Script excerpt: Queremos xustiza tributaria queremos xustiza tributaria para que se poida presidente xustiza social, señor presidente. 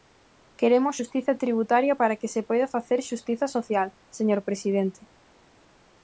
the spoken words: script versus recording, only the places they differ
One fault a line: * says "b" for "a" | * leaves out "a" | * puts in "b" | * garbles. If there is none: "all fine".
* leaves out "queremos xustiza tributaria"
* says "facer" for "presidente"